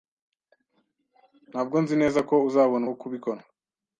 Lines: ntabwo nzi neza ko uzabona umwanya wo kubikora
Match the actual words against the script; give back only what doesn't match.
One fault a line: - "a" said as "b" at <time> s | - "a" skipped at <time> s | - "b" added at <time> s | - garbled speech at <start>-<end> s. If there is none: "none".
- "umwanya" skipped at 2.8 s